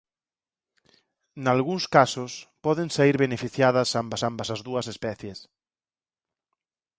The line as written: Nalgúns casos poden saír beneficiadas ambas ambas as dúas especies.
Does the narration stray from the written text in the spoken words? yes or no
no